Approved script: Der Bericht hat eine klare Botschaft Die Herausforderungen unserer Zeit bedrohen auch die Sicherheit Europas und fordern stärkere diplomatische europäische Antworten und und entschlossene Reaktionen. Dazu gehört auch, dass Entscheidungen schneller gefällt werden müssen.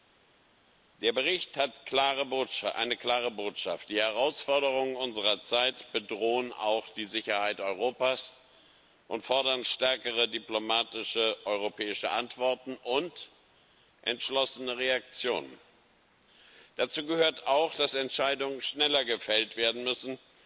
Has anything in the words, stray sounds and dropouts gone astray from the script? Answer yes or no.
yes